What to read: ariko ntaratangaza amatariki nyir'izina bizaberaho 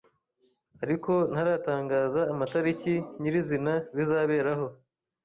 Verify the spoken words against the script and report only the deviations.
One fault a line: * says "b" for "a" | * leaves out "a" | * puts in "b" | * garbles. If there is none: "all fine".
all fine